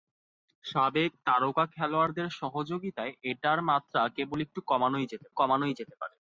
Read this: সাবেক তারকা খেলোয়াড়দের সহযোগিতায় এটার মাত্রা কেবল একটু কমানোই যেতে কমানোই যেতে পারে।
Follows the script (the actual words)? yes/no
yes